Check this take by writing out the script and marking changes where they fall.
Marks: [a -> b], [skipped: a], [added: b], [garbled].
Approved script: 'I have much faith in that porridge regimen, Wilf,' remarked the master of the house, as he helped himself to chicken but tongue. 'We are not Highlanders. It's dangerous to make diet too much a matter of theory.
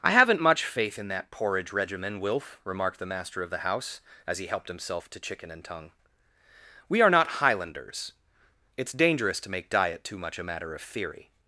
'I [have -> haven't] much faith in that porridge regimen, Wilf,' remarked the master of the house, as he helped himself to chicken [but -> and] tongue. 'We are not Highlanders. It's dangerous to make diet too much a matter of theory.